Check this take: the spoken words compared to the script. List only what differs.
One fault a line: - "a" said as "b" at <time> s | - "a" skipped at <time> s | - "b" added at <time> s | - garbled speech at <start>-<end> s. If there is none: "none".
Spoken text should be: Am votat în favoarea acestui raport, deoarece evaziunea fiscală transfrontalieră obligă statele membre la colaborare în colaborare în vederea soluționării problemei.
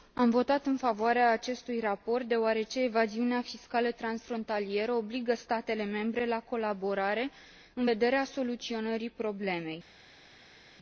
- "colaborare în" skipped at 7.9 s